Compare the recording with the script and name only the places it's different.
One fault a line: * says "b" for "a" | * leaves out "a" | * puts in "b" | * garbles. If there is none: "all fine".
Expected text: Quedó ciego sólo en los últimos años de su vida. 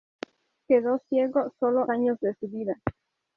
* leaves out "en los últimos"